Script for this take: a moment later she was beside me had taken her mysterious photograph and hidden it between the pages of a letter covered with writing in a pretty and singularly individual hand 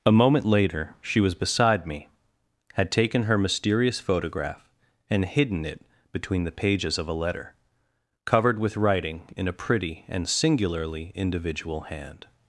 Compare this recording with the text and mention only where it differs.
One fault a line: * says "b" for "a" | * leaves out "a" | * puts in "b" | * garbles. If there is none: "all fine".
all fine